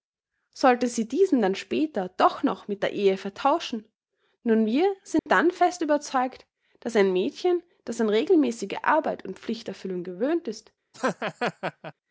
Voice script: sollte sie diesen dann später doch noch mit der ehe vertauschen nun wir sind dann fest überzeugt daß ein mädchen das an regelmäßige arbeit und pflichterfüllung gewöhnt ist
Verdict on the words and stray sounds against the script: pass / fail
fail